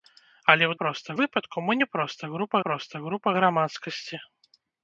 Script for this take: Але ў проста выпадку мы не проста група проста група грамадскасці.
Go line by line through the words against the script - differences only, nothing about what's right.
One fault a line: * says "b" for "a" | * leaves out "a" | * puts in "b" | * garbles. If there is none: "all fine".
all fine